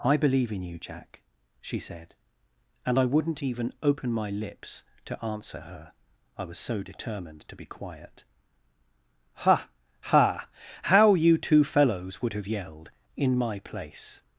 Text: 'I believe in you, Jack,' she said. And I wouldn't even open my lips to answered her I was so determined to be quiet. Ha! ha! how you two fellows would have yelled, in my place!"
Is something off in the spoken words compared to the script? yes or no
yes